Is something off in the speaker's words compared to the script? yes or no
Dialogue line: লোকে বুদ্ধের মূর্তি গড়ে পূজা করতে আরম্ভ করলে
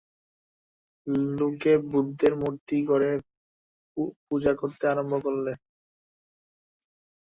no